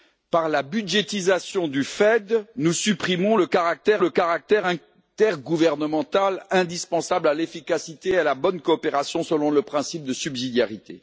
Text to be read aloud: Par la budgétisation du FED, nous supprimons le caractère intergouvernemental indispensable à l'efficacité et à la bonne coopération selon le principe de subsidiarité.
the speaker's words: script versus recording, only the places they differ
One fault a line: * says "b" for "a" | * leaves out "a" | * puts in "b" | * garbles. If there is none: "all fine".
* puts in "le caractère"